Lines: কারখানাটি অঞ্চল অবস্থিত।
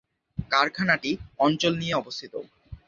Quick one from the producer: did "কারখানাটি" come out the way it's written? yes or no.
yes